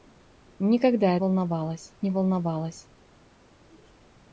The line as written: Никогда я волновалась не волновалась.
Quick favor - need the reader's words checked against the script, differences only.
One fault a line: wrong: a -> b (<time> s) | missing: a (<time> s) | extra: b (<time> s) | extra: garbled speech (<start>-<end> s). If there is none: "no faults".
no faults